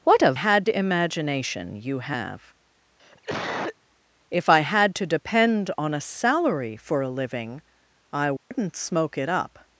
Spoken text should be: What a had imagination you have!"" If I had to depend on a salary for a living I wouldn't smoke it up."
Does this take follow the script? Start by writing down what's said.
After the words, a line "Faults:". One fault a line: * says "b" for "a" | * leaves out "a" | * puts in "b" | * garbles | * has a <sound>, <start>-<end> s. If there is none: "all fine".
What a had imagination you have!"" If I had to depend on a salary for a living I wouldn't smoke it up."
Faults:
* has a cough, 3.0-3.8 s
* has a dropout, 8.4-8.5 s